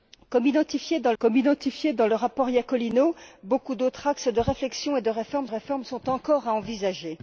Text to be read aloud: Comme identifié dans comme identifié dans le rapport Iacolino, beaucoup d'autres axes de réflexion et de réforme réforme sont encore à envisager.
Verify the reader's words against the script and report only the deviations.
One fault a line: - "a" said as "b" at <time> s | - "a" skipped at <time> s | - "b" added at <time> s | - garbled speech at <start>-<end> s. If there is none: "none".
none